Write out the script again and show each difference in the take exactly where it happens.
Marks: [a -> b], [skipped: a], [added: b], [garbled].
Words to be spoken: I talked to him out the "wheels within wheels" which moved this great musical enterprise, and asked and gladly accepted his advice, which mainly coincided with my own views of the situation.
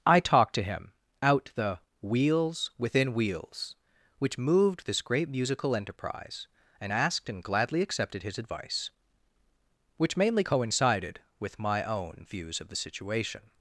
I talked to him out the "wheels within wheels" which moved this great musical enterprise, and asked and gladly accepted his advice, which mainly coincided with my own views of the situation.